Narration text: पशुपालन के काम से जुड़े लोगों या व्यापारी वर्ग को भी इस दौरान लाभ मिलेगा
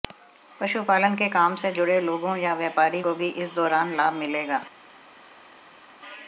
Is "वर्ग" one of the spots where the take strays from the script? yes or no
yes